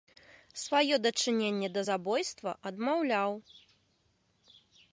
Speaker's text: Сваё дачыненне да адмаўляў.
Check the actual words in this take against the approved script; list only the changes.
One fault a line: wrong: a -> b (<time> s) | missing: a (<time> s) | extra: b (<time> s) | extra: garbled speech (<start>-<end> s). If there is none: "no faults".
extra: забойства (1.9 s)